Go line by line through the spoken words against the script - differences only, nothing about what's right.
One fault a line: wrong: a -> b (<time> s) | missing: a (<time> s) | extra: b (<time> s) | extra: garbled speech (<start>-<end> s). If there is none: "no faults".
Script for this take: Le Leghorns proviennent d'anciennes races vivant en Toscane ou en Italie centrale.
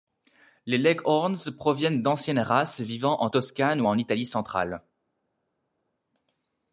wrong: Le -> Les (0.7 s)